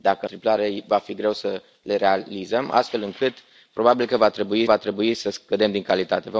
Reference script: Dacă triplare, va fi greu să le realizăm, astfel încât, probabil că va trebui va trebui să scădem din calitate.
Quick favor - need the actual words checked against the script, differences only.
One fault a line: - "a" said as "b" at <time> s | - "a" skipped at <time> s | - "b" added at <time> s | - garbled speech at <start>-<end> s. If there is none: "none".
none